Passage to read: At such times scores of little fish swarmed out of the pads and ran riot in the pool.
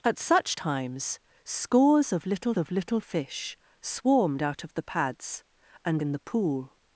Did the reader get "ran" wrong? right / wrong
wrong